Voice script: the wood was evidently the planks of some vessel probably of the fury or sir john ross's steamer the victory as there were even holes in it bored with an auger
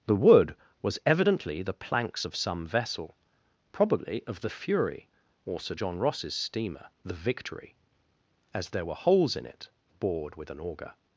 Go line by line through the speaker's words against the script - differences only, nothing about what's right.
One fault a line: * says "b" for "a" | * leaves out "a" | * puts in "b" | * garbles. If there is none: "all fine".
* leaves out "even"